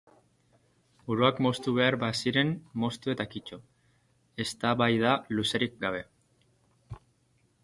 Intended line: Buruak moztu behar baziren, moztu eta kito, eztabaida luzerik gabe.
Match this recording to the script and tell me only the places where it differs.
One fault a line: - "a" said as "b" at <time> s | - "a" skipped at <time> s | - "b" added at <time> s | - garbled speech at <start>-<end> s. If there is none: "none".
none